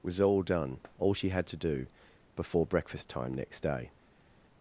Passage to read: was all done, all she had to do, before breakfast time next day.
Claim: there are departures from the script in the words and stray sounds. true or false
false